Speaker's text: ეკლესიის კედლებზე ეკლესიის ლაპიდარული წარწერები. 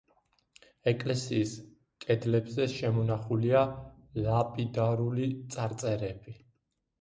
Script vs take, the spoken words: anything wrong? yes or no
yes